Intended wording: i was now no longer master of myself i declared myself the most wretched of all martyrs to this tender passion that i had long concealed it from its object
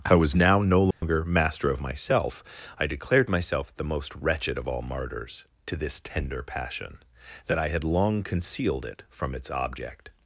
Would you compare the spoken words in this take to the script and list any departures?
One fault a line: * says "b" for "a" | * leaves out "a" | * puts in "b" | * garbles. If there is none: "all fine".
all fine